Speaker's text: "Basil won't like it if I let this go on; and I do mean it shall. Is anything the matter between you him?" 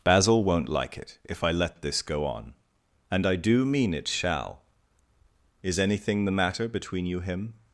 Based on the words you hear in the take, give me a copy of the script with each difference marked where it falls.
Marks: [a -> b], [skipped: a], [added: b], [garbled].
"Basil won't like it if I let this go on; and I do mean it shall. Is anything the matter between you him?"